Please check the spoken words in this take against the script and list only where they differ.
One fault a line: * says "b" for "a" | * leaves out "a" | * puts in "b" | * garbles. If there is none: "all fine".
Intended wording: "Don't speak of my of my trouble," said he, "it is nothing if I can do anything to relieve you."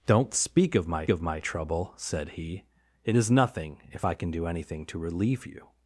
all fine